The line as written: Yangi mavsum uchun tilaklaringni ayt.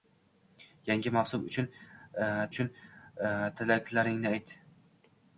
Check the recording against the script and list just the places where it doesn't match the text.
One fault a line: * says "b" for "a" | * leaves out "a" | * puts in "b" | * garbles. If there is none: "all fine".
* puts in "uchun"